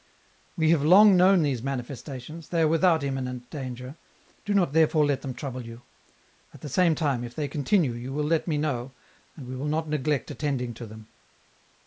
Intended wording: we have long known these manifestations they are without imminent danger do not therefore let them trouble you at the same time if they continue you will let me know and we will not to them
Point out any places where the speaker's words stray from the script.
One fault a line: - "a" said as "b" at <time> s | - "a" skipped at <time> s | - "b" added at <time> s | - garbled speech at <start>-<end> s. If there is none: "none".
- "neglect attending" added at 9.9 s